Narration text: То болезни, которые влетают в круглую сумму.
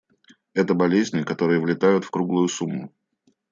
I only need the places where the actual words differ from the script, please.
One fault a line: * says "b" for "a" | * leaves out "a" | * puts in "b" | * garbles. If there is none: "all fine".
* says "Это" for "То"